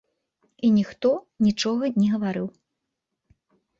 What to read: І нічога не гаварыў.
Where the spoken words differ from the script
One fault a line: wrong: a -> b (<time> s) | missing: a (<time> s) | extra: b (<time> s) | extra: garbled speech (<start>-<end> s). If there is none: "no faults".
extra: ніхто (0.8 s)